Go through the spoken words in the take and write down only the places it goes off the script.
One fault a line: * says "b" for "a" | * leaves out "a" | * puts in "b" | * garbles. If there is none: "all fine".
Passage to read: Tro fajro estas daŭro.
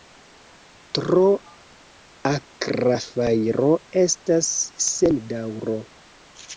* puts in "akra"
* puts in "sen"